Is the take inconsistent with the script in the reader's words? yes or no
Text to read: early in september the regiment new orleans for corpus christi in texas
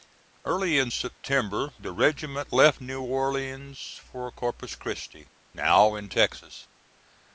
yes